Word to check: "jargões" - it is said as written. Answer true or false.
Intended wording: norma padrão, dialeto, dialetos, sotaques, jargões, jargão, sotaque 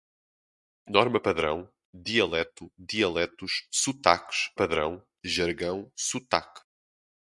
false